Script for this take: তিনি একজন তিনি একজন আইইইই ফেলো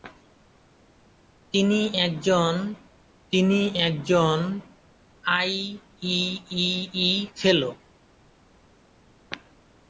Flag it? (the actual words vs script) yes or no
no